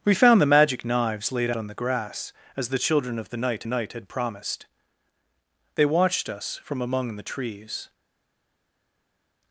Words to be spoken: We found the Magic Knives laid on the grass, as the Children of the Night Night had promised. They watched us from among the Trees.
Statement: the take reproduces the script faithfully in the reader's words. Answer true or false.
true